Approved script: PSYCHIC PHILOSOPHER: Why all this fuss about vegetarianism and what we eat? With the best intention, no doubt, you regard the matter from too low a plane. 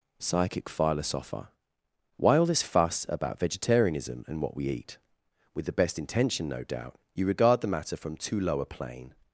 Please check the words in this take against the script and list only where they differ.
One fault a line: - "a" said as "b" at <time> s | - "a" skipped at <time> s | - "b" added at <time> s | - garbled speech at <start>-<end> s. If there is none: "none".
none